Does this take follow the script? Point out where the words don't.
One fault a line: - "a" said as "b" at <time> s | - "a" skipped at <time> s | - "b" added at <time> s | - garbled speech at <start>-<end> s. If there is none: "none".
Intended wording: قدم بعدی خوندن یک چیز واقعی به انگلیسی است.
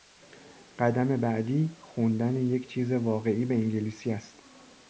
none